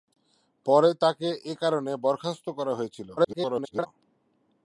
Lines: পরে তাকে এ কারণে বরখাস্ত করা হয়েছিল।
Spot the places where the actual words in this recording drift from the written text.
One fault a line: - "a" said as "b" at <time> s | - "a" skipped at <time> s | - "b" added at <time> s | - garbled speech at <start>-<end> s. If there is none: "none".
- garbled speech at 3.2-3.9 s